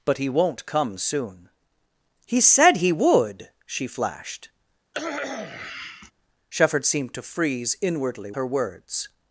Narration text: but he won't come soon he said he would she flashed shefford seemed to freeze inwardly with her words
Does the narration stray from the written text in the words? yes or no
yes